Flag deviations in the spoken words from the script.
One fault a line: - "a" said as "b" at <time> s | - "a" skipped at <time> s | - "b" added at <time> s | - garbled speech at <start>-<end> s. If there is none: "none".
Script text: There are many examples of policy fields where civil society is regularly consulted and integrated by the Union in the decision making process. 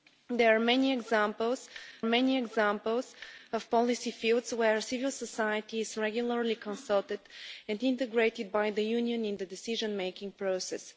- "many examples" added at 2.0 s